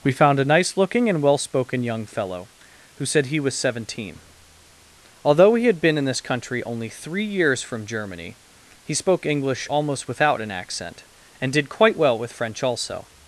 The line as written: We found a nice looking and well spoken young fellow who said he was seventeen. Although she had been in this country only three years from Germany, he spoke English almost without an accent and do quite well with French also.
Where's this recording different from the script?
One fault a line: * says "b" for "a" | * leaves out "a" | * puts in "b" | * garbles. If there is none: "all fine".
* says "he" for "she"
* says "did" for "do"